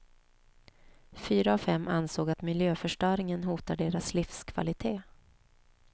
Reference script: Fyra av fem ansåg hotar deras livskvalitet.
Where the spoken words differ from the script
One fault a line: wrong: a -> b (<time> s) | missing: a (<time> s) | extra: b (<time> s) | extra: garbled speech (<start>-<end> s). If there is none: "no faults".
extra: att miljöförstöringen (2.3 s)